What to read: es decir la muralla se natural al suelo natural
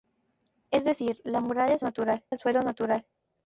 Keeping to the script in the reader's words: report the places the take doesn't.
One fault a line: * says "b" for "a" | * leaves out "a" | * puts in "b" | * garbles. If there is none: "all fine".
all fine